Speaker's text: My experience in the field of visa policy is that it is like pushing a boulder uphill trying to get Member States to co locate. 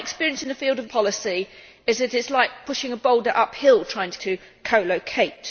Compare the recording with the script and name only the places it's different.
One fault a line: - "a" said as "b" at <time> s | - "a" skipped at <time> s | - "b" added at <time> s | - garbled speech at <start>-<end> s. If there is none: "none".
- "visa" skipped at 0.9 s
- "get Member States" skipped at 4.2 s